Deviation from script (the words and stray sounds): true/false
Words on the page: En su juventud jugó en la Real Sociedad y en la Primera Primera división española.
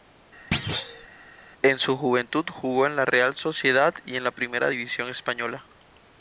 true